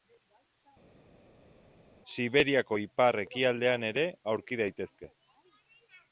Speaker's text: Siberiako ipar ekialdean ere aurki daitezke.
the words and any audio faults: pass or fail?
pass